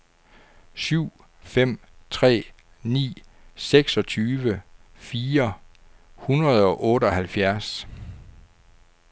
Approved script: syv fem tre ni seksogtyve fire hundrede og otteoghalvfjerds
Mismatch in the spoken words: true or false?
false